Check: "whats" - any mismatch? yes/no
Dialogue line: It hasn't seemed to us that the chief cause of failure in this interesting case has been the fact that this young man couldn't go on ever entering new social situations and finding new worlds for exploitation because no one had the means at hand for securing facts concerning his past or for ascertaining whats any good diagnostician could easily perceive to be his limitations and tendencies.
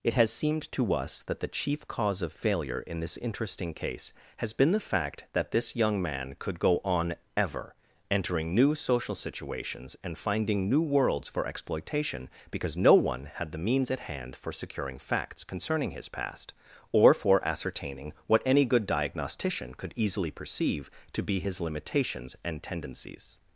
yes